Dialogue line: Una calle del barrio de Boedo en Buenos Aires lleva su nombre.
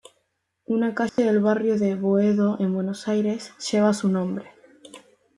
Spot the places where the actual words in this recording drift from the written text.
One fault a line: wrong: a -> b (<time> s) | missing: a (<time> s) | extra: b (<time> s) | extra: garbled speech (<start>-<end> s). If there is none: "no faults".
no faults